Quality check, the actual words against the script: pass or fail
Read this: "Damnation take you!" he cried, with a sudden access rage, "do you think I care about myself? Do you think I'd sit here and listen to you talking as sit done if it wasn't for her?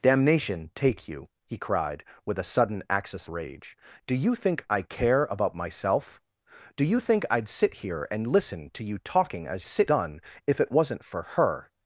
pass